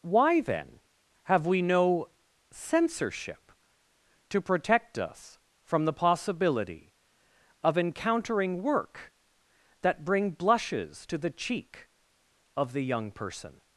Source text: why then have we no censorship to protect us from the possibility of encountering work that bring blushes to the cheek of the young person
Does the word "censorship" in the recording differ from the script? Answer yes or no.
no